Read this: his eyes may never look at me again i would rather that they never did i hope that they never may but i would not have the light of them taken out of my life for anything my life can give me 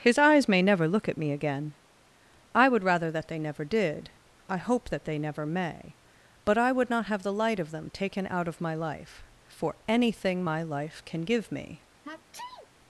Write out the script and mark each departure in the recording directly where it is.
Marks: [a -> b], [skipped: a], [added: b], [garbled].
his eyes may never look at me again i would rather that they never did i hope that they never may but i would not have the light of them taken out of my life for anything my life can give me